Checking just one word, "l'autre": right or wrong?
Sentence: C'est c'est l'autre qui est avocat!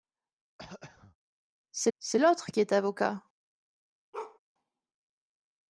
right